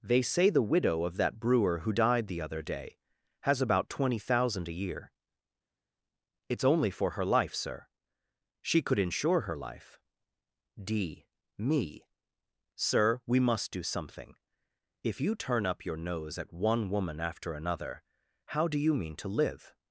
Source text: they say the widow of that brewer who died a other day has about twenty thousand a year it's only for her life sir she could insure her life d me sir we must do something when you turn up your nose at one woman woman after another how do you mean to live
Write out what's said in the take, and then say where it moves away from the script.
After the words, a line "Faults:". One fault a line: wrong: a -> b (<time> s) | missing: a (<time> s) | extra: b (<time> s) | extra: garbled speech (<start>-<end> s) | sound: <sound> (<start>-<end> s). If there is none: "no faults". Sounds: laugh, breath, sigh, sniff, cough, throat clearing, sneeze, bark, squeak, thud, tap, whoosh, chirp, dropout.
they say the widow of that brewer who died the other day has about twenty thousand a year it's only for her life sir she could insure her life d me sir we must do something if you turn up your nose at one woman after another how do you mean to live
Faults:
wrong: a -> the (2.3 s)
wrong: when -> if (15.0 s)
missing: woman (17.2 s)